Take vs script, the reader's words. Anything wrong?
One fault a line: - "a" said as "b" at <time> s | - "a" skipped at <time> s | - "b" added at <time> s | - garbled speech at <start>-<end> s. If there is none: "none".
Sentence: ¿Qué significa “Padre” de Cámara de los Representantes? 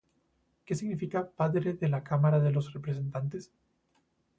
- "la" added at 1.9 s